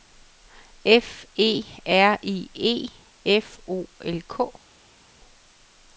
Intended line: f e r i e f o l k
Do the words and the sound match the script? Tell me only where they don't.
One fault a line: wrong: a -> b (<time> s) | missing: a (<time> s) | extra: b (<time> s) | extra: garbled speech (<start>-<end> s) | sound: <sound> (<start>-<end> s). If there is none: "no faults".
no faults